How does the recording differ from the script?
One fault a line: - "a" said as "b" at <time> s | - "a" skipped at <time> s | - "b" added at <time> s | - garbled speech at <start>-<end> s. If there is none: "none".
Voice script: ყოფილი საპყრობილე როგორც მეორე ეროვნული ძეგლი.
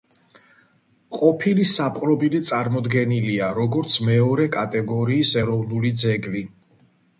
- "წარმოდგენილია" added at 2.5 s
- "კატეგორიის" added at 4.6 s